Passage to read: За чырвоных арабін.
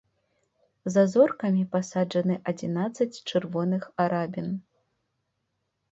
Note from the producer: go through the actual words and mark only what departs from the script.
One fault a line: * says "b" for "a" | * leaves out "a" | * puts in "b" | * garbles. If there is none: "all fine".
* puts in "зоркамі пасаджаны адзінаццаць"